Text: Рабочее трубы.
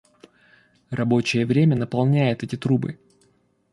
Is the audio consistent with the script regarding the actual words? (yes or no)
no